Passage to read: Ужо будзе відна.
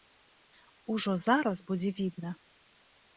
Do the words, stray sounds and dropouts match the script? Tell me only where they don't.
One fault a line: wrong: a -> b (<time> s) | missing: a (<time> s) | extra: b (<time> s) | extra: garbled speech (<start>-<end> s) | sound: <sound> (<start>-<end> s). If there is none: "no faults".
extra: зараз (1.2 s)